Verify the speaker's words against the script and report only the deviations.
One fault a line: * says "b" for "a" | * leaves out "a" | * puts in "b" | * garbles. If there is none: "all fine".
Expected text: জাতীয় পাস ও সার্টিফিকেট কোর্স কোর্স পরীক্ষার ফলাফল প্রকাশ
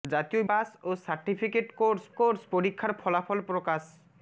all fine